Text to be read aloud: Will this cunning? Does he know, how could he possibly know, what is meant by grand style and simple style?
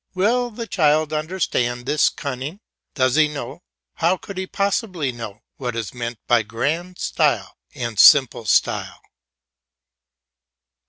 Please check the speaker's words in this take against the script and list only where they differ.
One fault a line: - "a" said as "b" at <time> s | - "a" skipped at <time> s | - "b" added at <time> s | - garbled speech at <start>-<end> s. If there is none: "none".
- "the child understand" added at 0.5 s